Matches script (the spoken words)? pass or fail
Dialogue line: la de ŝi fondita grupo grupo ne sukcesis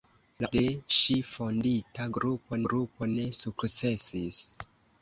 pass